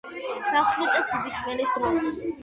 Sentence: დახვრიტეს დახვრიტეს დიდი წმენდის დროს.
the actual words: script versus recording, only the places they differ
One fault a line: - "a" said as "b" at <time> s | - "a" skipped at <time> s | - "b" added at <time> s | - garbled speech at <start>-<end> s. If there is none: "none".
- "დახვრიტეს" skipped at 1.1 s